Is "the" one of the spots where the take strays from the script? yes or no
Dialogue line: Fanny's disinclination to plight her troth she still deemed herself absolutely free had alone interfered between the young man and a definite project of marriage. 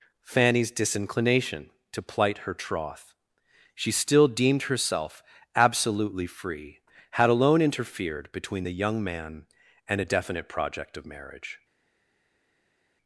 no